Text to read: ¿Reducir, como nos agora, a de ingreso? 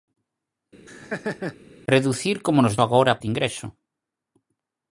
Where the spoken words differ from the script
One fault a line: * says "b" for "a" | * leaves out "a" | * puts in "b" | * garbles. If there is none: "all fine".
all fine